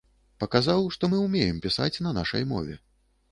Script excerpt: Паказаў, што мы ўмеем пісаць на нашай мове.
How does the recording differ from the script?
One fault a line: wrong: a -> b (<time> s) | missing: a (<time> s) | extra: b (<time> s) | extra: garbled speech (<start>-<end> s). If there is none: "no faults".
no faults